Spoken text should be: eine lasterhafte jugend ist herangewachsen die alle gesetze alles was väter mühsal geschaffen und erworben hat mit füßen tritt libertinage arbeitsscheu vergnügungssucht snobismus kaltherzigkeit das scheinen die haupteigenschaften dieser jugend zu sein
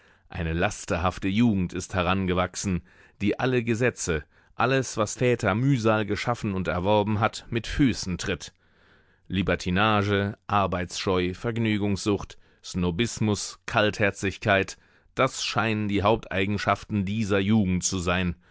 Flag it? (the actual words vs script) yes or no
no